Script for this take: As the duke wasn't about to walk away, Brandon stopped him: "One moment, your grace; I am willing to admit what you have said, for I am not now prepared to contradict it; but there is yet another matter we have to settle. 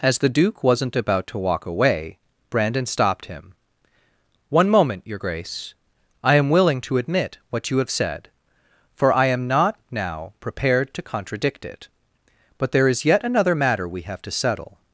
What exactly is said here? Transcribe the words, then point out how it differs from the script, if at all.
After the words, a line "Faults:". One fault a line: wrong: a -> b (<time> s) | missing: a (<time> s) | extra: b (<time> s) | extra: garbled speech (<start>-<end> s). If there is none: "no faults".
As the duke wasn't about to walk away, Brandon stopped him: "One moment, your grace; I am willing to admit what you have said, for I am not now prepared to contradict it; but there is yet another matter we have to settle.
Faults:
no faults